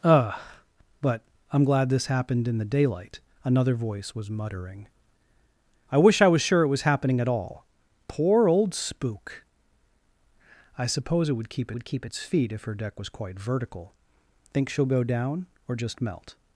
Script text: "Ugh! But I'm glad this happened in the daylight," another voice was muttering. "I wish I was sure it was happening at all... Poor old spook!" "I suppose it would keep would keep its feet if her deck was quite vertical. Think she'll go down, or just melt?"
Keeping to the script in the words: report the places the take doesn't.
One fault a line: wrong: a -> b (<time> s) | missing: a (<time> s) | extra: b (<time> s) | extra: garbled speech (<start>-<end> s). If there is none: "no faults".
no faults